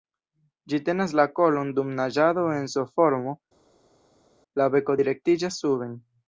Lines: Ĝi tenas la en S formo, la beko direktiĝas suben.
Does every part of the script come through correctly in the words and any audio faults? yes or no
no